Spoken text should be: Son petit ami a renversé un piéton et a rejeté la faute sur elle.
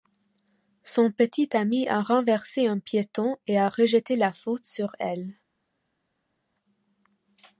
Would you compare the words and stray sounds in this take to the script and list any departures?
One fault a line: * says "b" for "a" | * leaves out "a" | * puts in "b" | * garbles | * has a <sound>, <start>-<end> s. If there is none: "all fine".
all fine